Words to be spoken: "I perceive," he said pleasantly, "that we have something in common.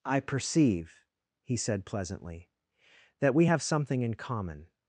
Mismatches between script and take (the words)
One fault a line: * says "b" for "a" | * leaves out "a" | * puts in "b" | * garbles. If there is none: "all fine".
all fine